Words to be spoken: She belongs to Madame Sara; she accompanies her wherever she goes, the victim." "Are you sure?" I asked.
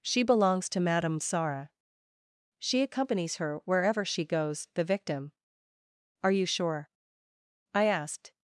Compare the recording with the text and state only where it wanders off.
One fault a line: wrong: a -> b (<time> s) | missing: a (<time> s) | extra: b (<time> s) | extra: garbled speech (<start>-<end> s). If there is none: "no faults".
no faults